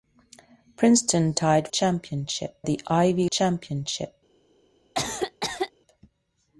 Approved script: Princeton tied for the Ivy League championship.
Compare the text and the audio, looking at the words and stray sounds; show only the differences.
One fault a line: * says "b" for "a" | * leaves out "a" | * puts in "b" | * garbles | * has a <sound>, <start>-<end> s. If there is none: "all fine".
* says "championship" for "for"
* leaves out "League"
* has a cough, 5.0-5.7 s